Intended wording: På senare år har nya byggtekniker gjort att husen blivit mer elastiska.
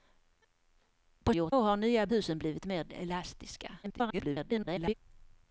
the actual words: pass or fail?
fail